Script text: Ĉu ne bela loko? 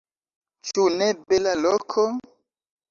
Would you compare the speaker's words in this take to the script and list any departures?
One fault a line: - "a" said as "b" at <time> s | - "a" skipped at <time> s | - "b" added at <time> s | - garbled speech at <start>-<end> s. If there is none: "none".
none